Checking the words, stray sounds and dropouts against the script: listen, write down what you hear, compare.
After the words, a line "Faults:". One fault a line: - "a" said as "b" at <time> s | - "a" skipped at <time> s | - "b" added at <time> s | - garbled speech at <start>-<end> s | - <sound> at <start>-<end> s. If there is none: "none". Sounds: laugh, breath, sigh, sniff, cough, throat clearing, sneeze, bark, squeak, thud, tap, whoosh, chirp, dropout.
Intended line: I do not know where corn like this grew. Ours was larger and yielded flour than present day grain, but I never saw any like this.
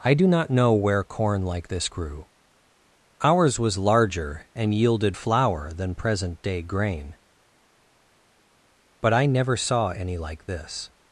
I do not know where corn like this grew. Ours was larger and yielded flour than present day grain, but I never saw any like this.
Faults:
none